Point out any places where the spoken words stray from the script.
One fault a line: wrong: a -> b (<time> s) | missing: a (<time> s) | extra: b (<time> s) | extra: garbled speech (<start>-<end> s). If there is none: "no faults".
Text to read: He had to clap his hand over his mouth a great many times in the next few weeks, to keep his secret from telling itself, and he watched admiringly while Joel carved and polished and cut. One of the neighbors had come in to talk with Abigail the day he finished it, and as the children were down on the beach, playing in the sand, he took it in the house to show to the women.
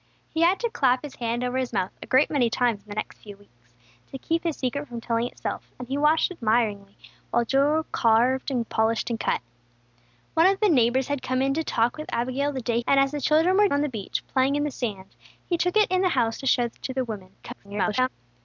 missing: he finished it (12.8 s)
missing: down (13.7 s)
extra: garbled speech (17.4-18.1 s)